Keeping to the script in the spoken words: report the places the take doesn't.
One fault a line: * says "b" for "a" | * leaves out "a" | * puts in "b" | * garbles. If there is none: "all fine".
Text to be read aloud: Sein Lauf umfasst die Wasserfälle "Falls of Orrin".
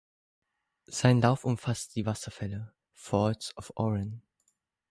all fine